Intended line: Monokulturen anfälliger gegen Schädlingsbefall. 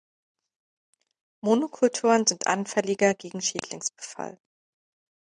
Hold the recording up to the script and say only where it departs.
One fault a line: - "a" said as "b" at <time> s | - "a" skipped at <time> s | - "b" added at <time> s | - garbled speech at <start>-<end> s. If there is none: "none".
- "sind" added at 2.2 s